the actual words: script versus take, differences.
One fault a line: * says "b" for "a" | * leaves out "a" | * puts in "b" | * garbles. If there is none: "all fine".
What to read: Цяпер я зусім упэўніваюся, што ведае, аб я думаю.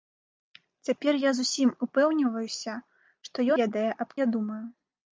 all fine